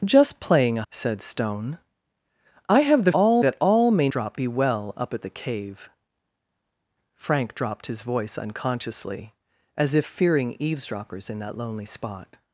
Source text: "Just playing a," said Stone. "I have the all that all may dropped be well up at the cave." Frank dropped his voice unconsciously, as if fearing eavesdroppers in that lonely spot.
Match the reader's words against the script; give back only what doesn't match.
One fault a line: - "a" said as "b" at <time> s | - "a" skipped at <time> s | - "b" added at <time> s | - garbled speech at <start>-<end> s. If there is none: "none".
none